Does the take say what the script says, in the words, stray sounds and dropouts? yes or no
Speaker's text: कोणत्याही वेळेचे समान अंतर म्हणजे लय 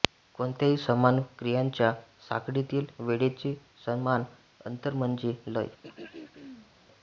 no